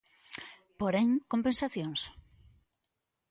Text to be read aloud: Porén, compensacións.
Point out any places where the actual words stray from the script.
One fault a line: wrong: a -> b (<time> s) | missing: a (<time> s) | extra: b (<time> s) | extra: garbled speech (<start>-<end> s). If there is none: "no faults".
no faults